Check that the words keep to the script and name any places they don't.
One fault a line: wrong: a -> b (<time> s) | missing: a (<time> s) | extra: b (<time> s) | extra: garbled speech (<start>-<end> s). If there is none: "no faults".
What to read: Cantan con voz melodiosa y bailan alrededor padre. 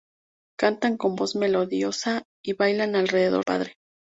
no faults